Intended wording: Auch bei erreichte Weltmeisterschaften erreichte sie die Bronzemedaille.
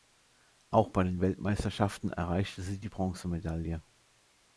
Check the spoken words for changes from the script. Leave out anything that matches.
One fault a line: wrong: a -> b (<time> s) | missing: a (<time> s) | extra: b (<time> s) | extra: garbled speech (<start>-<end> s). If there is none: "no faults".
wrong: erreichte -> den (1.0 s)